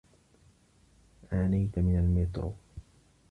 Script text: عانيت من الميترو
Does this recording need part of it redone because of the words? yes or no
no